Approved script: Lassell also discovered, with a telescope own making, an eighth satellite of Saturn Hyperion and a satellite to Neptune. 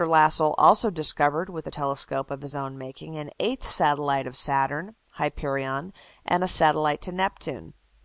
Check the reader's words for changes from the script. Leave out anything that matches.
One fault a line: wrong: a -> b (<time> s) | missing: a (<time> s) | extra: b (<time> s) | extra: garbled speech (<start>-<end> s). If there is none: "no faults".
extra: of his (2.3 s)